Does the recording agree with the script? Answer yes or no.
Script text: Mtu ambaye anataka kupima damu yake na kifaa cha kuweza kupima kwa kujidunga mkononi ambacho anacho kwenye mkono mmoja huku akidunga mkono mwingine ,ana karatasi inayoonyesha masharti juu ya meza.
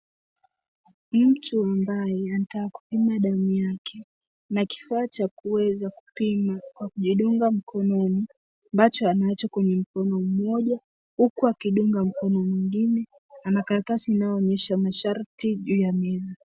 yes